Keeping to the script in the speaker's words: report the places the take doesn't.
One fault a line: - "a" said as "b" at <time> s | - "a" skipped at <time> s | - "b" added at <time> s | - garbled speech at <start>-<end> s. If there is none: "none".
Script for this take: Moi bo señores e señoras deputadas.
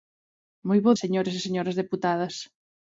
none